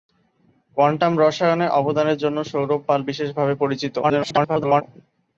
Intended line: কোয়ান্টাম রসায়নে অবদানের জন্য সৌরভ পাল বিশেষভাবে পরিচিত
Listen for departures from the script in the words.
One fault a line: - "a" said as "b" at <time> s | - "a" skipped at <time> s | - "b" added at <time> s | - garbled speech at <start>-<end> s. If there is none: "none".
- garbled speech at 4.0-4.8 s